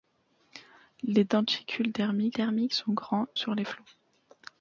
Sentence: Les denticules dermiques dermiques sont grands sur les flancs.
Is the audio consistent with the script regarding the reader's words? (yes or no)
yes